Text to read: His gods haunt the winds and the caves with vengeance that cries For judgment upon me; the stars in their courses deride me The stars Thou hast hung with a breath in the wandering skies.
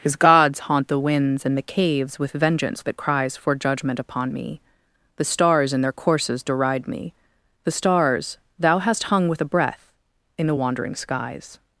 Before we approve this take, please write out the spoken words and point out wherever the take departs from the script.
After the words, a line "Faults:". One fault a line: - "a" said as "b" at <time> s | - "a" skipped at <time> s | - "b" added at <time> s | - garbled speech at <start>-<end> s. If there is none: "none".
His gods haunt the winds and the caves with vengeance that cries For judgment upon me; the stars in their courses deride me The stars Thou hast hung with a breath in the wandering skies.
Faults:
none